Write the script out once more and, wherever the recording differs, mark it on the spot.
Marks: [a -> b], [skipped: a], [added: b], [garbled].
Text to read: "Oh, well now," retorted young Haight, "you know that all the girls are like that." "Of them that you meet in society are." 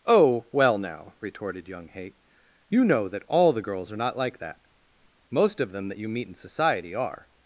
"Oh, well now," retorted young Haight, "you know that all the girls are [added: not] like that." [added: Most] "Of them that you meet in society are."